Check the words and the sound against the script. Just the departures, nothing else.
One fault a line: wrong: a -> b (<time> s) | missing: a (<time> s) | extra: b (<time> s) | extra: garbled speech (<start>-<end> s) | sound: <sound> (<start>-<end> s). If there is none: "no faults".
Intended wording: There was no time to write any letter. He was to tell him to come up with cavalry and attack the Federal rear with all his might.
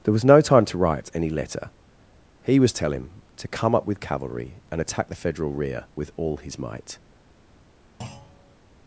missing: to (2.7 s)
sound: thud (8.0-8.6 s)